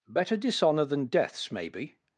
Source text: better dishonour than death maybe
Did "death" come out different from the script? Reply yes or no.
yes